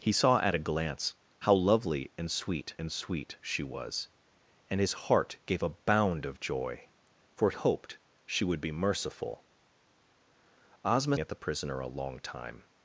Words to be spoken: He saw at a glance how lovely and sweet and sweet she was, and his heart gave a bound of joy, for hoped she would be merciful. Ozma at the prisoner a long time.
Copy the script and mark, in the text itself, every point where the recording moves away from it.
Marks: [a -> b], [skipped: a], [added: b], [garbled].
He saw at a glance how lovely and sweet and sweet she was, and his heart gave a bound of joy, for hoped she would be merciful. Ozma at the prisoner a long time.